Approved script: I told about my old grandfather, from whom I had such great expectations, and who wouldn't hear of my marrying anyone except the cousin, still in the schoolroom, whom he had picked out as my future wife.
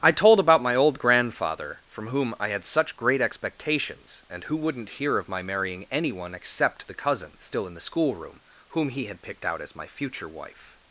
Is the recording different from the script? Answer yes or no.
no